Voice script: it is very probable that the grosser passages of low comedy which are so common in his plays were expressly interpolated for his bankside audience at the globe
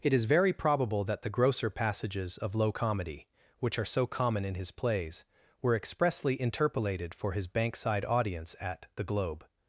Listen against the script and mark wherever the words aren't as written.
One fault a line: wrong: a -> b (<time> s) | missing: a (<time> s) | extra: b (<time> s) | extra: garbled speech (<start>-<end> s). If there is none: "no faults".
no faults